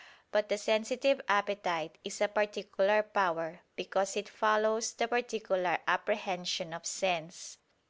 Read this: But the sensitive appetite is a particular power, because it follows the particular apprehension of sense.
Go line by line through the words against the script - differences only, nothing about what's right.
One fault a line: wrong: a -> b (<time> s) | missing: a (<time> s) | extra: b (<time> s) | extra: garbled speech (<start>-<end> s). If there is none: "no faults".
no faults